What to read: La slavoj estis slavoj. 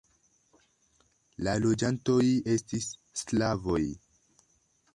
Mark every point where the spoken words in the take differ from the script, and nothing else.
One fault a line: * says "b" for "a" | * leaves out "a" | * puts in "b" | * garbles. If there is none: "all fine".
* says "loĝantoj" for "slavoj"